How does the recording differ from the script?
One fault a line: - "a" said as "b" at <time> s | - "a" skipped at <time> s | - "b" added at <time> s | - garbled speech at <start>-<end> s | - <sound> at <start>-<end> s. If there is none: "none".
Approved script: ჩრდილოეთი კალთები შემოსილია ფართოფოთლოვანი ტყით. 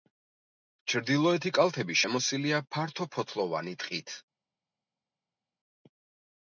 none